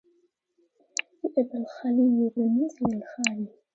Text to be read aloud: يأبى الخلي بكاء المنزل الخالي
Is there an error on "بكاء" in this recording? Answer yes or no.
yes